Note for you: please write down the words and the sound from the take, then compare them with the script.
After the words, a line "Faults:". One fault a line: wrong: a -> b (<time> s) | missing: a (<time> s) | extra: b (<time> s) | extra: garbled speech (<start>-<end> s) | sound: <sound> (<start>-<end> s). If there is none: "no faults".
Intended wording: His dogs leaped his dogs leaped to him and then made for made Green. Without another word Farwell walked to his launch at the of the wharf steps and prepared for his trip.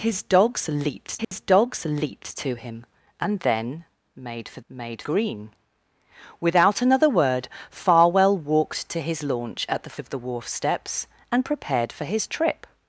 His dogs leaped his dogs leaped to him and then made for made Green. Without another word Farwell walked to his launch at the of the wharf steps and prepared for his trip.
Faults:
sound: dropout (1.2-1.3 s)